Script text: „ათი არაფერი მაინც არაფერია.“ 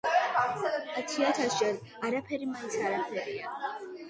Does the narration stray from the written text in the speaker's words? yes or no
yes